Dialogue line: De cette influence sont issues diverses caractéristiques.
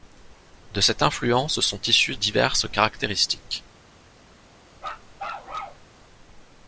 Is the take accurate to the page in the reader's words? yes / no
yes